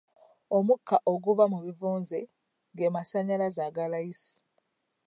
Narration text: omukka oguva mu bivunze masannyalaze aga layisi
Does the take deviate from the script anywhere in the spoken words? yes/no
yes